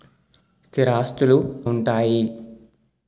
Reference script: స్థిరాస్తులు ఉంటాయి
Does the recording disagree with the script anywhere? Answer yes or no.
no